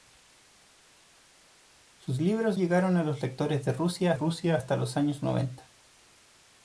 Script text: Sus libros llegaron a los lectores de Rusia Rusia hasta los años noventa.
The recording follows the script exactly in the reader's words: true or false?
true